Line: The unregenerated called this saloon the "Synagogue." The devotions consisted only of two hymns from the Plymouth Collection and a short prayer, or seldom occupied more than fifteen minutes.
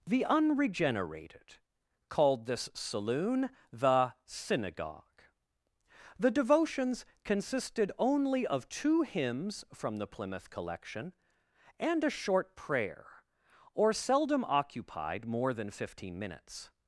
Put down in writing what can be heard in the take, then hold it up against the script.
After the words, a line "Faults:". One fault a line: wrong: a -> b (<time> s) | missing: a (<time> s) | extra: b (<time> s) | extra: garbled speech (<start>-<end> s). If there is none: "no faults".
The unregenerated called this saloon the "Synagogue." The devotions consisted only of two hymns from the Plymouth Collection and a short prayer, or seldom occupied more than fifteen minutes.
Faults:
no faults